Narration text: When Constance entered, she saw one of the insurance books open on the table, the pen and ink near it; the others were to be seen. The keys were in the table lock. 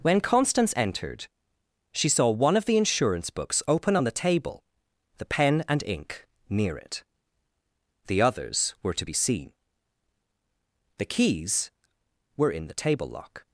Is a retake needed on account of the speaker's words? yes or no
no